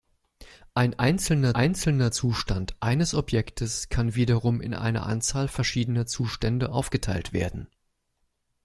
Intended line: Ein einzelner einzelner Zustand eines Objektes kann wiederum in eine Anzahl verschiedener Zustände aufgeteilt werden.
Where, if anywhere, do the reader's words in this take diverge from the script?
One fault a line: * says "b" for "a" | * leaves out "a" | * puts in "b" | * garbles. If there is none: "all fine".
all fine